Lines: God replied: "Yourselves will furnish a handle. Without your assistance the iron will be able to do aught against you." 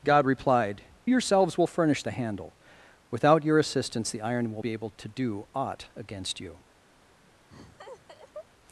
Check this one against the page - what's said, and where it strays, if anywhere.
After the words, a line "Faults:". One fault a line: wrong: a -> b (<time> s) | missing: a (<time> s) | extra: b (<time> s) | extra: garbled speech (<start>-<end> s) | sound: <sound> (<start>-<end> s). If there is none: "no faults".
God replied: "Yourselves will furnish a handle. Without your assistance the iron will be able to do aught against you."
Faults:
sound: laugh (7.5-8.5 s)